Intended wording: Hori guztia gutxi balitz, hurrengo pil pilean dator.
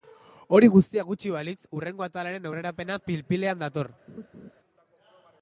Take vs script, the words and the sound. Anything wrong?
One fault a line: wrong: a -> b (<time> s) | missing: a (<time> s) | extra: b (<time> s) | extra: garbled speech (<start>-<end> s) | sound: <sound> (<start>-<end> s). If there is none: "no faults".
extra: atalaren aurrerapena (2.1 s)
sound: laugh (4.1-4.5 s)